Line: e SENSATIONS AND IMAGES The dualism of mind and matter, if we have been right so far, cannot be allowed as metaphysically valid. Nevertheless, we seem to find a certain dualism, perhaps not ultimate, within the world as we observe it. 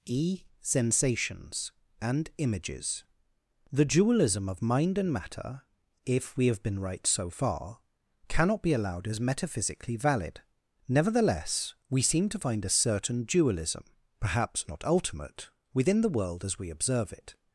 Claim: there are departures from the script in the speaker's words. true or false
false